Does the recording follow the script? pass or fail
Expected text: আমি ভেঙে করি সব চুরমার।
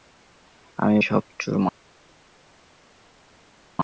fail